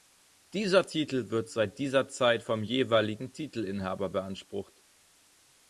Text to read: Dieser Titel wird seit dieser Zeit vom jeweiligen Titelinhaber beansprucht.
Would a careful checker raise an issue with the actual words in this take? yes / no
no